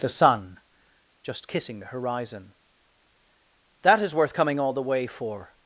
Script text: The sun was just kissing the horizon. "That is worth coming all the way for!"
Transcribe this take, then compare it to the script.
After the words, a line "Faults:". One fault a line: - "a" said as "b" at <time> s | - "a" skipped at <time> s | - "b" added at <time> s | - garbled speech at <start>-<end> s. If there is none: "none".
The sun just kissing the horizon. "That is worth coming all the way for!"
Faults:
- "was" skipped at 0.6 s